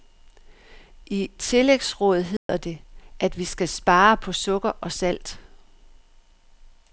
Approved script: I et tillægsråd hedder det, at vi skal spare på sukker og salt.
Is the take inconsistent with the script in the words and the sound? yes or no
yes